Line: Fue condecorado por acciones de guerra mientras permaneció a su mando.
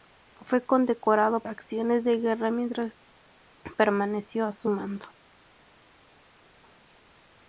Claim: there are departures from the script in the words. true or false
true